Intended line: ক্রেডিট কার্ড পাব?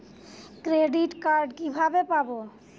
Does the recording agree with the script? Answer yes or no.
no